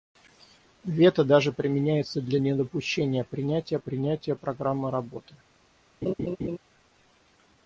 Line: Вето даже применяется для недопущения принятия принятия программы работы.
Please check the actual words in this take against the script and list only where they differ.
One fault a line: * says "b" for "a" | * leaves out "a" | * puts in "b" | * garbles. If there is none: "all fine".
all fine